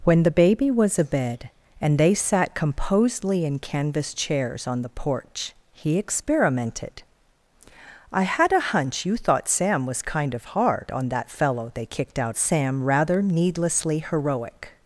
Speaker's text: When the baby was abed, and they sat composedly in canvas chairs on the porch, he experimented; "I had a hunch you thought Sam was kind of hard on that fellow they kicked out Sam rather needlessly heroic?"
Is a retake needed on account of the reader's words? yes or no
no